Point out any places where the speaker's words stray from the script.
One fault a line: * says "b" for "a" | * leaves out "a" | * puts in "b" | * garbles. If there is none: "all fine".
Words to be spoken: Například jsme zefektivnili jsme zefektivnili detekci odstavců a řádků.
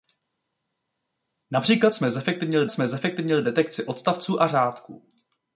all fine